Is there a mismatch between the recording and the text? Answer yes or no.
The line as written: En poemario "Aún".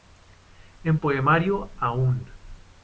no